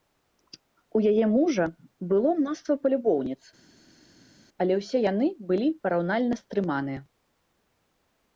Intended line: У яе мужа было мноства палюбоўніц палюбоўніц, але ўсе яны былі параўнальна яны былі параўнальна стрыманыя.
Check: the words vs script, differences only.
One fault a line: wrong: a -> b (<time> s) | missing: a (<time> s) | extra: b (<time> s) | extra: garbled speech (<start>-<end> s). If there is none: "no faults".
missing: палюбоўніц (3.4 s)
missing: яны былі параўнальна (6.3 s)